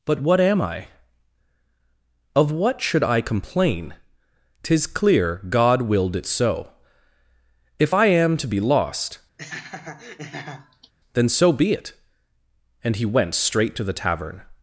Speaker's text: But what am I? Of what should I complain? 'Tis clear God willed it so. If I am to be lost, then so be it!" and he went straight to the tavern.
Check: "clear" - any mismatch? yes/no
no